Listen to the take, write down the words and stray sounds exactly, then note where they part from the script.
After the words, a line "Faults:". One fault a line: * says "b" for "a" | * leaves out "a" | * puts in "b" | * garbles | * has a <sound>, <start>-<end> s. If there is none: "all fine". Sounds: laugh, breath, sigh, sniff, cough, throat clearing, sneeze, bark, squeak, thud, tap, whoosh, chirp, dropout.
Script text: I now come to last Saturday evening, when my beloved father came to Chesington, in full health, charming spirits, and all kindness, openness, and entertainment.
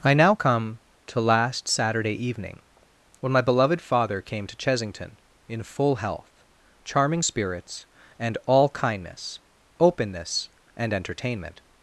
I now come to last Saturday evening, when my beloved father came to Chesington, in full health, charming spirits, and all kindness, openness, and entertainment.
Faults:
all fine